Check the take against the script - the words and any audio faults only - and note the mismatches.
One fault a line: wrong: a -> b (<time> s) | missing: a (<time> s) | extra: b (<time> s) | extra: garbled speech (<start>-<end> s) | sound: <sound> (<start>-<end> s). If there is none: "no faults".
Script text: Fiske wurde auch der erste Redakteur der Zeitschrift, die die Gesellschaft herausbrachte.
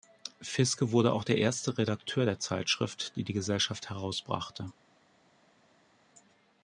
no faults